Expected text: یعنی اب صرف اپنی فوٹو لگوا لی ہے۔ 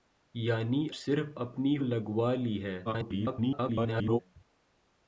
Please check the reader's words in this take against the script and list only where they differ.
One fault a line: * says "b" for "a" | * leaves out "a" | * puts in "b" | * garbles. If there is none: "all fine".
* leaves out "اب"
* leaves out "فوٹو"
* garbles